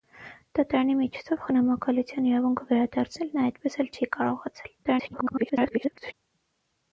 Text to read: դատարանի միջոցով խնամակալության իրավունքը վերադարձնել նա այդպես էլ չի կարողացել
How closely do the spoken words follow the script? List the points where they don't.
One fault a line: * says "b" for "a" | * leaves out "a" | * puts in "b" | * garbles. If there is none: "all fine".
* garbles